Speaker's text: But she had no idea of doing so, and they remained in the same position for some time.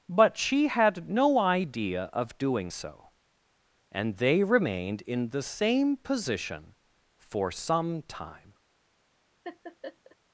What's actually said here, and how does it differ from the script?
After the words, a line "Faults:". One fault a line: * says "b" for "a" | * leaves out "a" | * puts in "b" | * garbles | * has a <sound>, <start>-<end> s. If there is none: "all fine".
But she had no idea of doing so, and they remained in the same position for some time.
Faults:
* has a laugh, 9.4-10.2 s